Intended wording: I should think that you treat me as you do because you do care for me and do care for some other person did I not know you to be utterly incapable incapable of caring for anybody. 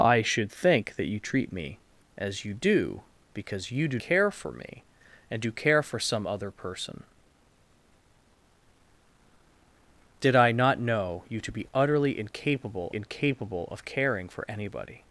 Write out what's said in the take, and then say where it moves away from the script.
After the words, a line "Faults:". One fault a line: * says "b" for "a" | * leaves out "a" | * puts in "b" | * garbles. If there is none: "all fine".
I should think that you treat me as you do because you do care for me and do care for some other person did I not know you to be utterly incapable incapable of caring for anybody.
Faults:
all fine